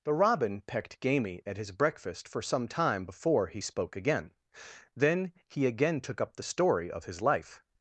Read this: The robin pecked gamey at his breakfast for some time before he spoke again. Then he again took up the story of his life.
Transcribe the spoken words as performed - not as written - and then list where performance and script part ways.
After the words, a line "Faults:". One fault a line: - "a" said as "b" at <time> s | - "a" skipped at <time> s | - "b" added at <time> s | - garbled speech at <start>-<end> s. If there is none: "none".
The robin pecked gamey at his breakfast for some time before he spoke again. Then he again took up the story of his life.
Faults:
none